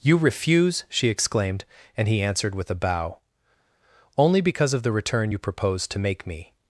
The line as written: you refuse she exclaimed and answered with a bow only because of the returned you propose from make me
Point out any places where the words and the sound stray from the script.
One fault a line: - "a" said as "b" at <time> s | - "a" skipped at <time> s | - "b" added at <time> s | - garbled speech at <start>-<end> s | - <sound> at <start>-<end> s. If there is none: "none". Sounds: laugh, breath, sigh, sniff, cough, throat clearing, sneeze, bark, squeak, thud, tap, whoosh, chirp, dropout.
- "he" added at 2.1 s
- "returned" said as "return" at 4.9 s
- "from" said as "to" at 5.9 s